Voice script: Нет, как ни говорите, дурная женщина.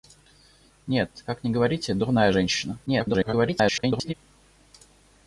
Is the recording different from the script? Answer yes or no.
yes